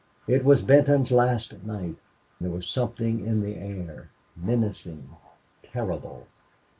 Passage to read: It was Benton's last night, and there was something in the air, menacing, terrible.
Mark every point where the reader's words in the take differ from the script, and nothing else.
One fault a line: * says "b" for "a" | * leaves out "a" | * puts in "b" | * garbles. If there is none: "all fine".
* leaves out "and"